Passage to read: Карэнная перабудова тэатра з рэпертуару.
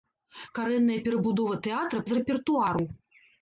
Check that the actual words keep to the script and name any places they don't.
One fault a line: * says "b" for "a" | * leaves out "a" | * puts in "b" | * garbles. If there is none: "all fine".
all fine